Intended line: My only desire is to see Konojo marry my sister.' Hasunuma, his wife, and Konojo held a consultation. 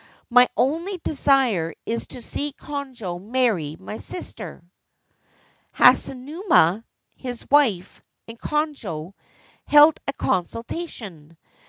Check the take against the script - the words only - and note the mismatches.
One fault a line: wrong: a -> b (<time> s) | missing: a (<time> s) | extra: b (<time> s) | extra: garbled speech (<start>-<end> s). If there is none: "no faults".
no faults